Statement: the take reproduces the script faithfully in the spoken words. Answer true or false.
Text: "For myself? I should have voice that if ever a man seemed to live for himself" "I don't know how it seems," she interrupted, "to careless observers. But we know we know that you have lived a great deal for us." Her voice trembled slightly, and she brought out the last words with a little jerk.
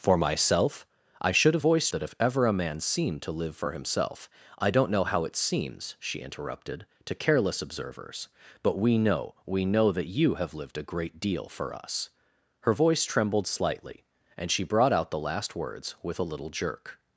true